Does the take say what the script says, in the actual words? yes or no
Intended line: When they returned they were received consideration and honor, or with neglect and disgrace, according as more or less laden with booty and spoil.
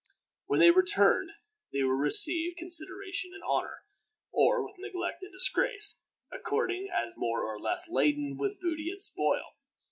yes